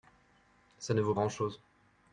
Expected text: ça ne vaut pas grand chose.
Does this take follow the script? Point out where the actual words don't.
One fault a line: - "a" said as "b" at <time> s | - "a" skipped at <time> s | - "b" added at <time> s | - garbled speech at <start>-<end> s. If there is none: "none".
- "pas" skipped at 1.1 s